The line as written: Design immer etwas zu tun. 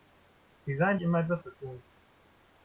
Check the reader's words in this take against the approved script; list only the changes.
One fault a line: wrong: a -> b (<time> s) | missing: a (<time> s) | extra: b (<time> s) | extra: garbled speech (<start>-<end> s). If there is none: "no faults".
no faults